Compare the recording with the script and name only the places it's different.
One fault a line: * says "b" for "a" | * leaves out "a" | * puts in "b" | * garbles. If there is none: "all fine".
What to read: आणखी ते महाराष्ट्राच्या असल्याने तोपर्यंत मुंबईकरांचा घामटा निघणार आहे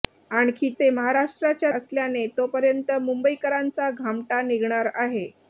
all fine